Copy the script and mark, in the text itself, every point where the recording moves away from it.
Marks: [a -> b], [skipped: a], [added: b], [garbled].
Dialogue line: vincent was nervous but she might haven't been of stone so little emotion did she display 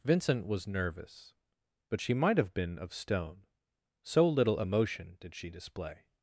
vincent was nervous but she might [haven't -> have] been of stone so little emotion did she display